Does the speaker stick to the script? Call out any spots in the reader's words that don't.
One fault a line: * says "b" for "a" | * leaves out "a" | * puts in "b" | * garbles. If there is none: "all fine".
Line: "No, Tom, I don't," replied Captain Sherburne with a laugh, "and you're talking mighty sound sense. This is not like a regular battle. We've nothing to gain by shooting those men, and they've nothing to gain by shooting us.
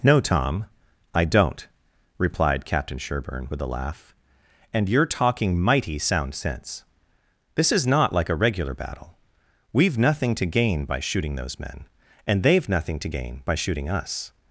all fine